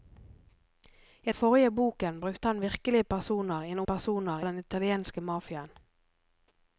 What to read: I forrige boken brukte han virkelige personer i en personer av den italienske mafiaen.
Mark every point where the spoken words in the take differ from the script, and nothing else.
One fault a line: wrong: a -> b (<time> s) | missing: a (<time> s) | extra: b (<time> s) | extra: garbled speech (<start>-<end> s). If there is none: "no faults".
no faults